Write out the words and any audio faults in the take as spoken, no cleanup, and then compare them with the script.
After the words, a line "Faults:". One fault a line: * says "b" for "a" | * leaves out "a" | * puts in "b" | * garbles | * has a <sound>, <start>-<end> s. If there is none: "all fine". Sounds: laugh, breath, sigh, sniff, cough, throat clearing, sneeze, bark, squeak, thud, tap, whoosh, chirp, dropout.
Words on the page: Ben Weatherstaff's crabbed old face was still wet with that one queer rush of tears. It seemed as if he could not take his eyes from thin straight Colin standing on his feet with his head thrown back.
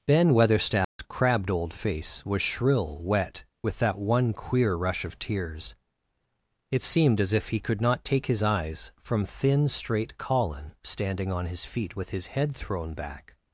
Ben Weatherstaff's crabbed old face was shrill wet with that one queer rush of tears. It seemed as if he could not take his eyes from thin straight Colin standing on his feet with his head thrown back.
Faults:
* has a dropout, 0.8-1.0 s
* says "shrill" for "still"